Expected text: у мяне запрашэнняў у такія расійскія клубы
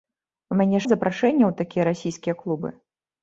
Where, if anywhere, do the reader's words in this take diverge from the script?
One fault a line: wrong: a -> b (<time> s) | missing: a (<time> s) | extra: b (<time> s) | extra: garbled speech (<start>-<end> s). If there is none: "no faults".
no faults